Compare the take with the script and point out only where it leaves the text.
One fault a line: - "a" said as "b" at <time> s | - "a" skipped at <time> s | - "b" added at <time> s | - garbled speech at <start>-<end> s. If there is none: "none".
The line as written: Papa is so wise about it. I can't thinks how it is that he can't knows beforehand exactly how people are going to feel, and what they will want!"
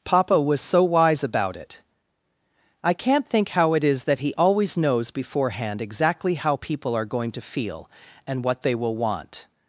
- "is" said as "was" at 0.4 s
- "thinks" said as "think" at 3.3 s
- "can't" said as "always" at 4.3 s